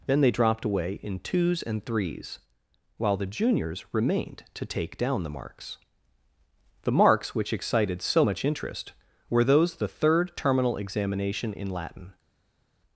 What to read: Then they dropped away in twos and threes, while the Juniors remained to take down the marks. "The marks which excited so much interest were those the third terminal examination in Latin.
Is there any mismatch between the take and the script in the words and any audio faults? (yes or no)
no